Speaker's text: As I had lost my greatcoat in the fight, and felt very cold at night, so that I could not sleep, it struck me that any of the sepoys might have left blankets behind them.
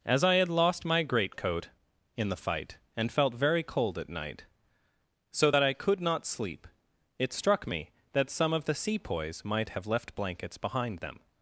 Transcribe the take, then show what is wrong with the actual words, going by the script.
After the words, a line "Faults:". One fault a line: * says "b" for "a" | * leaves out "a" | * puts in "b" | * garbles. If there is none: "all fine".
As I had lost my greatcoat in the fight, and felt very cold at night, so that I could not sleep, it struck me that some of the sepoys might have left blankets behind them.
Faults:
* says "some" for "any"